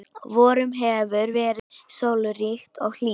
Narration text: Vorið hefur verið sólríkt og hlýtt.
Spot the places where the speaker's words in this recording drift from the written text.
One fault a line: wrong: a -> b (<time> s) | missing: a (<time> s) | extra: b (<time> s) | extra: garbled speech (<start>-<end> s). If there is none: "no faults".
no faults